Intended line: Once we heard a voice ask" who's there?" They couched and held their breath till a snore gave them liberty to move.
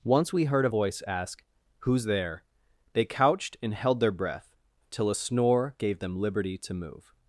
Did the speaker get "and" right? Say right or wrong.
right